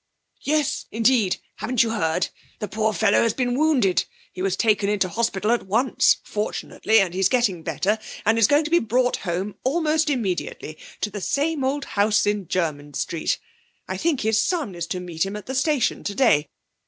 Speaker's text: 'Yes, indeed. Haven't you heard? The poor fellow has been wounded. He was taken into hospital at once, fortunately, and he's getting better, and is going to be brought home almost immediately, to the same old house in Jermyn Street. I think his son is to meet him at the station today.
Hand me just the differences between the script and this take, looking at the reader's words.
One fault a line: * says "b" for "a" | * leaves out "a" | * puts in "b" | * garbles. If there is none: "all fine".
all fine